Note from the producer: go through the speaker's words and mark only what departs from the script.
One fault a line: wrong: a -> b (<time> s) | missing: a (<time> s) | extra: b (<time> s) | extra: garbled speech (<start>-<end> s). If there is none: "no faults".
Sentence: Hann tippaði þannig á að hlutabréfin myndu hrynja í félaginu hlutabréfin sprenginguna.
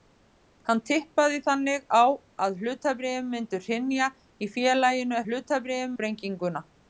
no faults